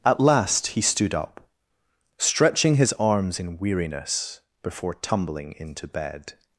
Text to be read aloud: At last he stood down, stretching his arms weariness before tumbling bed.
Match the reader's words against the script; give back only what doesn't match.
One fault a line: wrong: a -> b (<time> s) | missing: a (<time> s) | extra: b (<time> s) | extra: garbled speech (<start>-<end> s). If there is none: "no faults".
wrong: down -> up (1.1 s)
extra: in (3.4 s)
extra: into (5.6 s)